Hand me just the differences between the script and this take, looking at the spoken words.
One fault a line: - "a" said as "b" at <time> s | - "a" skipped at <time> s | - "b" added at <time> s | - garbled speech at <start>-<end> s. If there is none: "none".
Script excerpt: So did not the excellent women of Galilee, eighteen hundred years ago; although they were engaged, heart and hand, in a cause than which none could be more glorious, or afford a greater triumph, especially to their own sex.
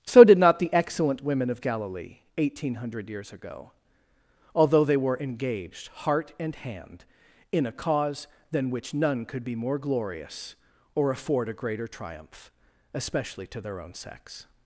none